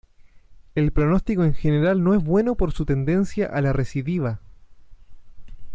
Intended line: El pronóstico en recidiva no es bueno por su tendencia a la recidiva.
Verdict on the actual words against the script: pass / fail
fail